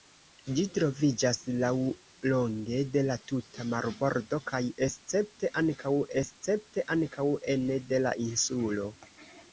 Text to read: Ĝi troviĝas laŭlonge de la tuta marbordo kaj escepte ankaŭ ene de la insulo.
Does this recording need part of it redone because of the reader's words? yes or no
yes